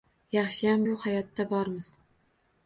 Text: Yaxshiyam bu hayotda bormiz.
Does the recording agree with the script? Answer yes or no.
yes